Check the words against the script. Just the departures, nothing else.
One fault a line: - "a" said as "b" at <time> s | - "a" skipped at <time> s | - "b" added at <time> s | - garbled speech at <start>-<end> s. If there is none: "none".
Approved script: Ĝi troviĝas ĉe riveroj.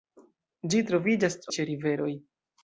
none